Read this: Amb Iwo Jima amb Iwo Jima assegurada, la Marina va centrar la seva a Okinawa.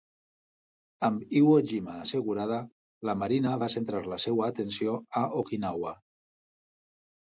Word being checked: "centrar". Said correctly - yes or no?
yes